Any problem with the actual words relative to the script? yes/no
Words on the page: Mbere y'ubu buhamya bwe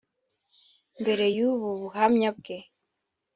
no